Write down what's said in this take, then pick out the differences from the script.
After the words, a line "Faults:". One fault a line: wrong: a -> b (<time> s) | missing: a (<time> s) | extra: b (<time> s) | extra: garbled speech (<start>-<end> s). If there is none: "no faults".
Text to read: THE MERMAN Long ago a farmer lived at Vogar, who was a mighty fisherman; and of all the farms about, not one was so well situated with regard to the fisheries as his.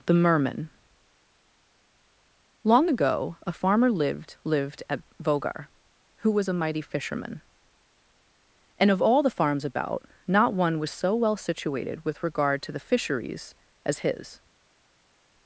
THE MERMAN Long ago a farmer lived lived at Vogar, who was a mighty fisherman; and of all the farms about, not one was so well situated with regard to the fisheries as his.
Faults:
extra: lived (4.4 s)